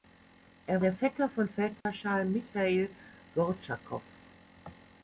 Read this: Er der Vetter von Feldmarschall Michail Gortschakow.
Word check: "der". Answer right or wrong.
right